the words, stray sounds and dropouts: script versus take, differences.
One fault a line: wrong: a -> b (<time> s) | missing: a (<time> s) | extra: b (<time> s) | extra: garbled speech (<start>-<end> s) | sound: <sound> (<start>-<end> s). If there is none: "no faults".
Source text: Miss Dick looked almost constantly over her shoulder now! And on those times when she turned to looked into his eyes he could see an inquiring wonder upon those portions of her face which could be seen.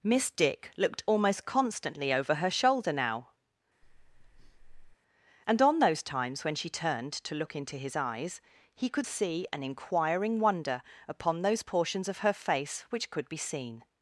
sound: breath (3.8-5.0 s)
wrong: looked -> look (7.3 s)